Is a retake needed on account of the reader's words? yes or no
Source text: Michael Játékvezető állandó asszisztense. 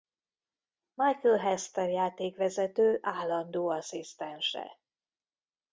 yes